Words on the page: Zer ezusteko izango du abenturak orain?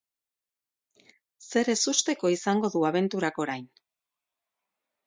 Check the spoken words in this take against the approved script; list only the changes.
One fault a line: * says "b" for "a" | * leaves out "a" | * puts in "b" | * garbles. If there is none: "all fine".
all fine